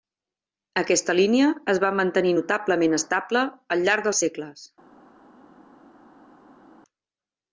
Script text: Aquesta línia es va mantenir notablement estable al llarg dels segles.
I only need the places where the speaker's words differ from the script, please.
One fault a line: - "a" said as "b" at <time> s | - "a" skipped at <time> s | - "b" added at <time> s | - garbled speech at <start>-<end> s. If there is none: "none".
none